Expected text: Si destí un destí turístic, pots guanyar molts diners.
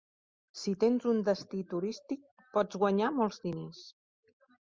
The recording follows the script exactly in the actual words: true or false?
false